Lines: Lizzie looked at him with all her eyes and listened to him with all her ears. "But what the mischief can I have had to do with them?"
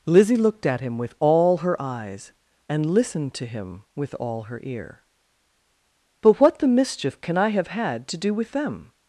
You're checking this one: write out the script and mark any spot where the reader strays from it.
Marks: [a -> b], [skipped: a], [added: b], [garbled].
Lizzie looked at him with all her eyes and listened to him with all her [ears. -> ear] "But what the mischief can I have had to do with them?"